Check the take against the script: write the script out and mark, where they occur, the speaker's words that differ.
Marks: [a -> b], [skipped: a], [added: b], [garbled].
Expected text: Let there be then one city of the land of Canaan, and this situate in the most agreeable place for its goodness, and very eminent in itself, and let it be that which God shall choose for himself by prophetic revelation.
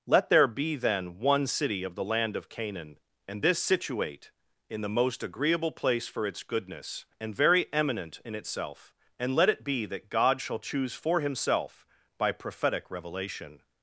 Let there be then one city of the land of Canaan, and this situate in the most agreeable place for its goodness, and very eminent in itself, and let it be that [skipped: which] God shall choose for himself by prophetic revelation.